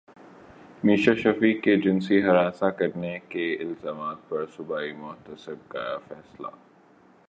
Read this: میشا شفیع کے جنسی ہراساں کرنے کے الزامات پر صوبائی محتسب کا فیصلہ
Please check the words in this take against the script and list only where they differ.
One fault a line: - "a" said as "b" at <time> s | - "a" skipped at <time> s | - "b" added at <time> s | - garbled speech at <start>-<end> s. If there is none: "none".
none